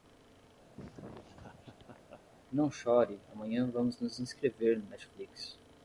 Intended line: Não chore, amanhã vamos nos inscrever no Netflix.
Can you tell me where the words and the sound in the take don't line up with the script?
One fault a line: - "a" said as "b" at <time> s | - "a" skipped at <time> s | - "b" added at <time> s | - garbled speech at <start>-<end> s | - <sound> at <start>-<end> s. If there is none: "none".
- laugh at 0.8-2.2 s